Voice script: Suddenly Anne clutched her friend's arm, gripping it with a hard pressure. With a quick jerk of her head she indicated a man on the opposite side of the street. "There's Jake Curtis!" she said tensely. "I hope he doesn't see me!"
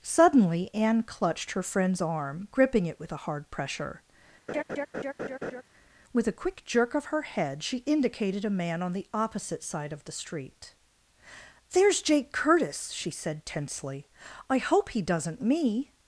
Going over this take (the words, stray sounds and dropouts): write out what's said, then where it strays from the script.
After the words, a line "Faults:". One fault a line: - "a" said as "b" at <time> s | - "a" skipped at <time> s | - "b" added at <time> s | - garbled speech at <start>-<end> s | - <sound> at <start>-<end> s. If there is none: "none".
Suddenly Anne clutched her friend's arm, gripping it with a hard pressure. With a quick jerk of her head she indicated a man on the opposite side of the street. "There's Jake Curtis!" she said tensely. "I hope he doesn't me!"
Faults:
- laugh at 4.5-5.6 s
- "see" skipped at 15.4 s